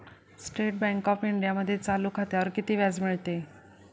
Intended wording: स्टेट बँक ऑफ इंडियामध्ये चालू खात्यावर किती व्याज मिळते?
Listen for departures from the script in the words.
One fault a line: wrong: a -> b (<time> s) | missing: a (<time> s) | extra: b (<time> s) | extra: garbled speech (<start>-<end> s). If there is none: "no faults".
no faults